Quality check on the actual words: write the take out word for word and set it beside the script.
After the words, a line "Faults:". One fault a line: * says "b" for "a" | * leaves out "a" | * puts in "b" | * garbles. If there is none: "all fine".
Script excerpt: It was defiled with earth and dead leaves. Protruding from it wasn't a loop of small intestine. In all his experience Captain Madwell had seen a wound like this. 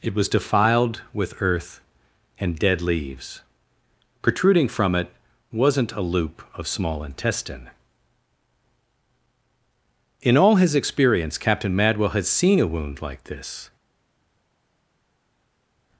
It was defiled with earth and dead leaves. Protruding from it wasn't a loop of small intestine. In all his experience Captain Madwell had seen a wound like this.
Faults:
all fine